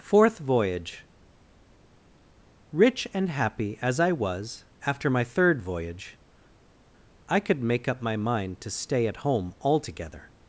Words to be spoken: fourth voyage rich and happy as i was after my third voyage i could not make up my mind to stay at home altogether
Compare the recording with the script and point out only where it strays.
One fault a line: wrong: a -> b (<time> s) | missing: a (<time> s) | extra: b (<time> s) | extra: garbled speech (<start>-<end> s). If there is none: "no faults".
missing: not (7.6 s)